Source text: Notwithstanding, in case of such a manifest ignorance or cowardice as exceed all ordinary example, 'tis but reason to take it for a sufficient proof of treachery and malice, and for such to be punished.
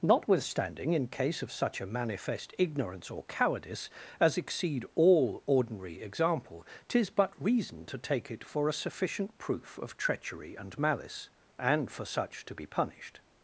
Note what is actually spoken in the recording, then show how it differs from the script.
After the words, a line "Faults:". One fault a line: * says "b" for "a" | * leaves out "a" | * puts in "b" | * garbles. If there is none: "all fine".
Notwithstanding, in case of such a manifest ignorance or cowardice as exceed all ordinary example, 'tis but reason to take it for a sufficient proof of treachery and malice, and for such to be punished.
Faults:
all fine